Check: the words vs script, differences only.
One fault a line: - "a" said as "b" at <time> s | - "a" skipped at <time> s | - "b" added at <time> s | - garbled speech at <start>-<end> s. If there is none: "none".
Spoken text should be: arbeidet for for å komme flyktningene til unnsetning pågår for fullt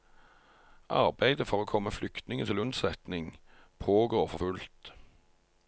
- "for" skipped at 1.6 s